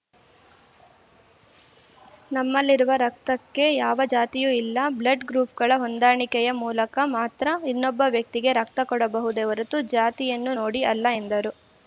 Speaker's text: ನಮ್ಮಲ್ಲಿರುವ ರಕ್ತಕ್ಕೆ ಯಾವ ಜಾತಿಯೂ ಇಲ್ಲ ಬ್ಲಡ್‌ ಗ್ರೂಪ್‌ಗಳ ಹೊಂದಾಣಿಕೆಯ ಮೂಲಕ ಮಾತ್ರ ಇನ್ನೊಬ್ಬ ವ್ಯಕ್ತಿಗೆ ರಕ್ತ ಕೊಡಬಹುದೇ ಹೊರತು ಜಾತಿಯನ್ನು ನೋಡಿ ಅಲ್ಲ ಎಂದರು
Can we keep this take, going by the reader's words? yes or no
yes